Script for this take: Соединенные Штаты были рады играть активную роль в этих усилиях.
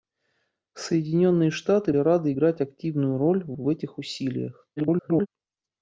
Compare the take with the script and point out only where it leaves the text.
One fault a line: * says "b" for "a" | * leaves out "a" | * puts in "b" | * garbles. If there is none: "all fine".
* leaves out "были"
* puts in "в"
* garbles